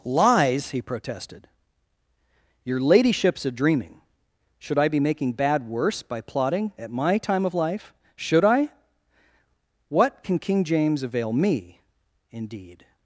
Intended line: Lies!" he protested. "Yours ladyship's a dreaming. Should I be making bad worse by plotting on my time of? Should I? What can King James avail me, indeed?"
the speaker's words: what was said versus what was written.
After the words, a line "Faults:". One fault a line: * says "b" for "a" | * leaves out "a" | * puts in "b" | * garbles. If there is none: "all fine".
Lies!" he protested. "Your ladyship's a dreaming. Should I be making bad worse by plotting at my time of life? Should I? What can King James avail me, indeed?"
Faults:
* says "Your" for "Yours"
* says "at" for "on"
* puts in "life"